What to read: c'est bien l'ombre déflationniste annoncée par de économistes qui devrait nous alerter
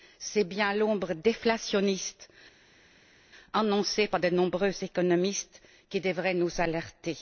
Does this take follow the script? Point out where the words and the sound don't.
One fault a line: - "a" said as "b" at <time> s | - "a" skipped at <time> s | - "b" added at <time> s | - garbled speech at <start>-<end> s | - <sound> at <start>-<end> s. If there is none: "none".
- "nombreux" added at 4.3 s